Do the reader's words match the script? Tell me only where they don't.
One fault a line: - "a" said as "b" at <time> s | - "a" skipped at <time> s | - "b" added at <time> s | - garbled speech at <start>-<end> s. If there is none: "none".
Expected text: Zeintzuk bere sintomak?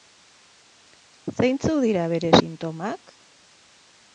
- "dira" added at 1.9 s